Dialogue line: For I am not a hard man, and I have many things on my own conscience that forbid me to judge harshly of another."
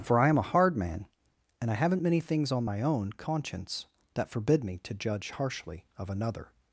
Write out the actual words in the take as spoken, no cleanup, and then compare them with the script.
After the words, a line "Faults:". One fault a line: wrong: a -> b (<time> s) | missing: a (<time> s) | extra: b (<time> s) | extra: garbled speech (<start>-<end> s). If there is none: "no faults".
For I am a hard man, and I haven't many things on my own conscience that forbid me to judge harshly of another."
Faults:
missing: not (0.4 s)
wrong: have -> haven't (1.8 s)